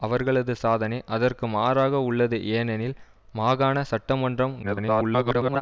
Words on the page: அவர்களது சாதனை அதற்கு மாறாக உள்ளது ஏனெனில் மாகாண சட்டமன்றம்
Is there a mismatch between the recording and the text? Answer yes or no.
yes